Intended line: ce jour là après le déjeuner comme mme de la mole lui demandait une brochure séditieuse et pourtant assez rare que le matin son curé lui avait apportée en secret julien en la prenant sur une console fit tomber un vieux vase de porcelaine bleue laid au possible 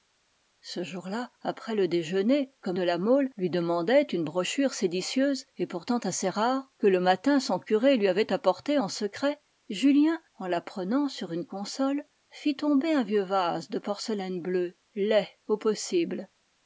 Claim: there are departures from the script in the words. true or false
true